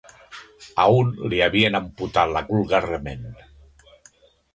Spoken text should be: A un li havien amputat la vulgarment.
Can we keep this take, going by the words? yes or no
yes